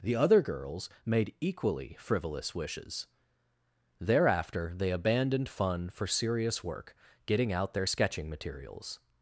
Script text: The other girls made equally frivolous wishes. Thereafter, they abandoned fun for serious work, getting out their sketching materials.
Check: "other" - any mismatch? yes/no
no